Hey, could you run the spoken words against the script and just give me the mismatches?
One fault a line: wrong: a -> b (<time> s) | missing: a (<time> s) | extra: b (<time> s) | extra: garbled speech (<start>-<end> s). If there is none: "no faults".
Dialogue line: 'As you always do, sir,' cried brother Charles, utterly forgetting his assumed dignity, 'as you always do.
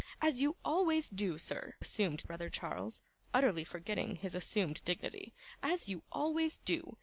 wrong: cried -> assumed (1.8 s)